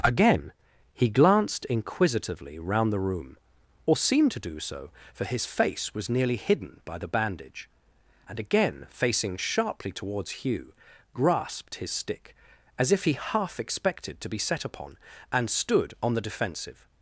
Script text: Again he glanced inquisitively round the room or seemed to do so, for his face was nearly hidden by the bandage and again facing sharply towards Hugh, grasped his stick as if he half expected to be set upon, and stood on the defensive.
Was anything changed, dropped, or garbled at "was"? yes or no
no